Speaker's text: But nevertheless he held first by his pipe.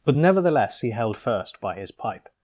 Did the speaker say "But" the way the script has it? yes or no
yes